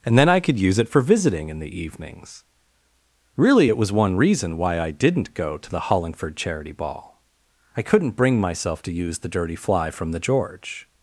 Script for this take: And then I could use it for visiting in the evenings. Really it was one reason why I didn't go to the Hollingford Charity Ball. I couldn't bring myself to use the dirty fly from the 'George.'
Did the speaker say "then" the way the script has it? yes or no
yes